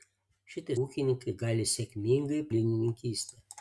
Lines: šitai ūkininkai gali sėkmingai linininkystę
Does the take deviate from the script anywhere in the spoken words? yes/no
no